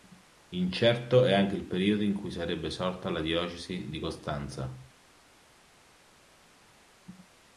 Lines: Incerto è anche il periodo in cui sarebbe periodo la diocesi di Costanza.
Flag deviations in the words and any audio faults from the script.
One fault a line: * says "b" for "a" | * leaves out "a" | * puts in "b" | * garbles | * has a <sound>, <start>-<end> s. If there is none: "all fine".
* says "sorta" for "periodo"